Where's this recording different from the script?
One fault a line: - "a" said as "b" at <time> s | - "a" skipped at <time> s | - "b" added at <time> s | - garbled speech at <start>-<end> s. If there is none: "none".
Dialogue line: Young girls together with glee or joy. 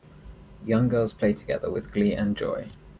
- "play" added at 1.1 s
- "or" said as "and" at 2.1 s